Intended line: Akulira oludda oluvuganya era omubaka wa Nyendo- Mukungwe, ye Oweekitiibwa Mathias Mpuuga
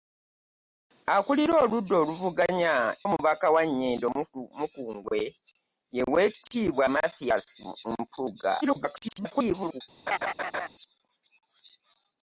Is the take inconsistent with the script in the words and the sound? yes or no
yes